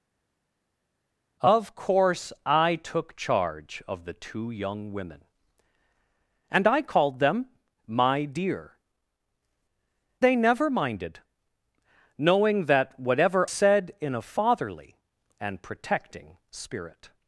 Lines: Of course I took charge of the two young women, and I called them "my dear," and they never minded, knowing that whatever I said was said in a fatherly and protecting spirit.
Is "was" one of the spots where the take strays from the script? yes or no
yes